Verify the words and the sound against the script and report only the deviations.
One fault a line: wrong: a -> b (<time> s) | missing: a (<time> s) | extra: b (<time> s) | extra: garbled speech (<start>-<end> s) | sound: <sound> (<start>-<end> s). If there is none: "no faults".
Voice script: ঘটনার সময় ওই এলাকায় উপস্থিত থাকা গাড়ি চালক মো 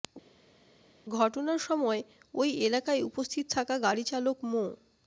no faults